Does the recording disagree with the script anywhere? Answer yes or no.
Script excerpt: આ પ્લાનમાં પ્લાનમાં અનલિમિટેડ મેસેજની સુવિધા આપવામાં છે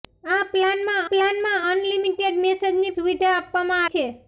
no